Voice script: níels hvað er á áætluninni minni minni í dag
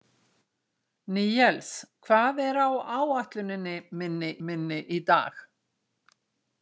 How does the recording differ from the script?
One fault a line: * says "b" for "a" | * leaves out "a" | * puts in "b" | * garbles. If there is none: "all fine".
all fine